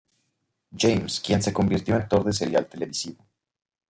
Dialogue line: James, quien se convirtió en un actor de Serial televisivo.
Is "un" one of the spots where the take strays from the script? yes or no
yes